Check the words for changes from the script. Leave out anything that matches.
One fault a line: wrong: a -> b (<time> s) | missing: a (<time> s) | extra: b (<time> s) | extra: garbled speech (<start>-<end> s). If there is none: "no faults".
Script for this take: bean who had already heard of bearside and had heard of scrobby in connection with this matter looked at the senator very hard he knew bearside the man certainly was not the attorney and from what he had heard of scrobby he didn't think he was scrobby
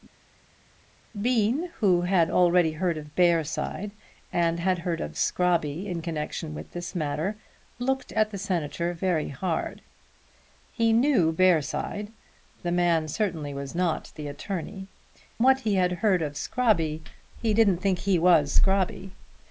missing: and from (14.9 s)